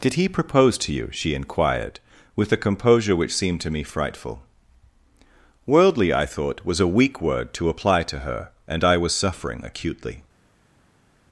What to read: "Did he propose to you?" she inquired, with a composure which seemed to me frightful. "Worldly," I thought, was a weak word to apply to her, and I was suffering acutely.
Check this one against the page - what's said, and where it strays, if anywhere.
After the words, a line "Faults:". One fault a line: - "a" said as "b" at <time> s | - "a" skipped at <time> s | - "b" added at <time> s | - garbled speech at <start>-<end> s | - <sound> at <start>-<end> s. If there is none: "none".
"Did he propose to you?" she inquired, with a composure which seemed to me frightful. "Worldly," I thought, was a weak word to apply to her, and I was suffering acutely.
Faults:
none